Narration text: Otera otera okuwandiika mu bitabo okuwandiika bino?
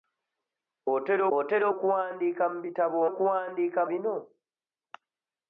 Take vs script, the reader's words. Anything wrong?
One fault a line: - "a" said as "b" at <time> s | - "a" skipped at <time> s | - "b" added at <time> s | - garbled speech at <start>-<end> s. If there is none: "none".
none